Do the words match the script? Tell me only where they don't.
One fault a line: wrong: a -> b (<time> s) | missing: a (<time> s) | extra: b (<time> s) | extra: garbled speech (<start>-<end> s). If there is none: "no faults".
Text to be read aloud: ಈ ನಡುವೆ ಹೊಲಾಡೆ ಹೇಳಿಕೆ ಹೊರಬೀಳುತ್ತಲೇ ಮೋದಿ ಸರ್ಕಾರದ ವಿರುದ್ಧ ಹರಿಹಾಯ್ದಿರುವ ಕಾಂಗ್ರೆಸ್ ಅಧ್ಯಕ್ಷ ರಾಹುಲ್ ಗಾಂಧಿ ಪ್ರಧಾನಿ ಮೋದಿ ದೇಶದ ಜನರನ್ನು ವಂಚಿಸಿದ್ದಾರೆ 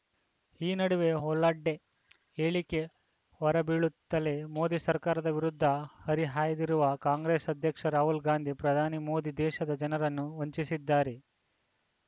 no faults